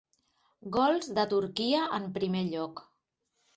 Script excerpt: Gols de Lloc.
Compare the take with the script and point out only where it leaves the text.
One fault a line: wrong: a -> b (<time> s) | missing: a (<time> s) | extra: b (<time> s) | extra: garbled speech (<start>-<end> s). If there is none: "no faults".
extra: Turquia en primer (1.3 s)